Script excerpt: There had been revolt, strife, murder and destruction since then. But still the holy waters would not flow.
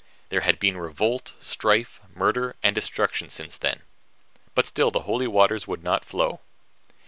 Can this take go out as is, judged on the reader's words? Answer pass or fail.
pass